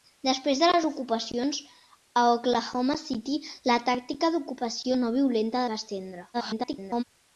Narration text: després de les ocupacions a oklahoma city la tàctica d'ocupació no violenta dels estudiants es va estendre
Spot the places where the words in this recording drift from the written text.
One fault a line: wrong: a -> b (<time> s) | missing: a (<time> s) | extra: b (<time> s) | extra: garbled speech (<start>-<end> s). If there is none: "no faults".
missing: dels estudiants es (5.7 s)
extra: garbled speech (6.3-7.0 s)